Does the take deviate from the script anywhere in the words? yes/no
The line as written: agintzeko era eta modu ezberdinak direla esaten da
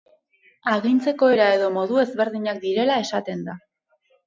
yes